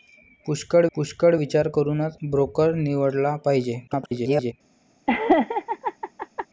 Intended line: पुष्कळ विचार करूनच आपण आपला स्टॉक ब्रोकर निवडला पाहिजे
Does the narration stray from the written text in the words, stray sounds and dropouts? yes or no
yes